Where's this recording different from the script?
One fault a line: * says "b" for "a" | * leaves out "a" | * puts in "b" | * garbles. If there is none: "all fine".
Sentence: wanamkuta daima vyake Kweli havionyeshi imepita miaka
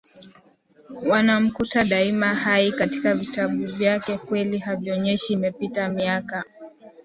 * puts in "hai katika vitabu"